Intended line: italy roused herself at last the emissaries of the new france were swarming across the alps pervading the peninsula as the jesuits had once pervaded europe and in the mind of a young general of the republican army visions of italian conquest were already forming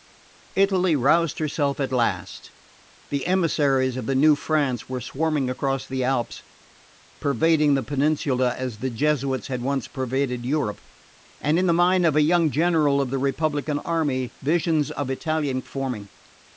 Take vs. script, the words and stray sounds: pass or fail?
fail